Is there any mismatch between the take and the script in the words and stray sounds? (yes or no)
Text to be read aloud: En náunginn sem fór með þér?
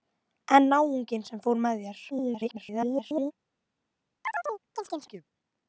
yes